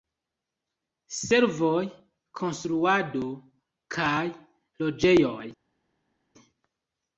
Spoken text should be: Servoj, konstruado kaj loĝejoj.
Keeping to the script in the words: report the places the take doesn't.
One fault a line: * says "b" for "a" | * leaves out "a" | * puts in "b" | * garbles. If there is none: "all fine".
all fine